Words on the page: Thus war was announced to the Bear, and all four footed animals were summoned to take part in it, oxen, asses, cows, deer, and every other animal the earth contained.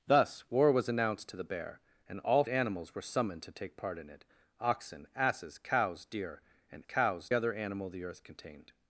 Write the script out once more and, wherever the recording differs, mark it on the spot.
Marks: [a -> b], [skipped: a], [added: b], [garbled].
Thus war was announced to the Bear, and all [skipped: four footed] animals were summoned to take part in it, oxen, asses, cows, deer, and [every -> cows] other animal the earth contained.